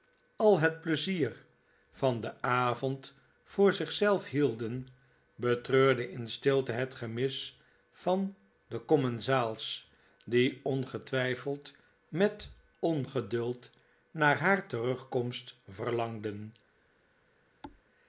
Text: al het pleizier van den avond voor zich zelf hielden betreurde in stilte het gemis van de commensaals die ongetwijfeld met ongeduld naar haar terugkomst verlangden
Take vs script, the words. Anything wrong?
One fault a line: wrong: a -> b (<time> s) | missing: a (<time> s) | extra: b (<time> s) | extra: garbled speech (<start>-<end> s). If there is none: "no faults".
no faults